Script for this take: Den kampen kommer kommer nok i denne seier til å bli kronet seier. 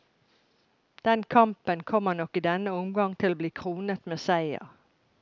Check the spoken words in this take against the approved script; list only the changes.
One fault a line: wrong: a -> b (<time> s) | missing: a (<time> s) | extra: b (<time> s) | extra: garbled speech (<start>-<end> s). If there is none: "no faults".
missing: kommer (2.1 s)
wrong: seier -> omgang (2.7 s)
extra: med (4.1 s)